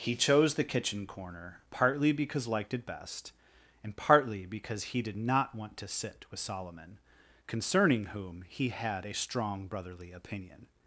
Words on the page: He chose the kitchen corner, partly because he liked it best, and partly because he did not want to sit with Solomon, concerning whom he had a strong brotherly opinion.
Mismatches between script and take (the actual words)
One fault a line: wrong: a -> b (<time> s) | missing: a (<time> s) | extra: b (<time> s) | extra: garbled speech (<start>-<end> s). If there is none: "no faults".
missing: he (2.5 s)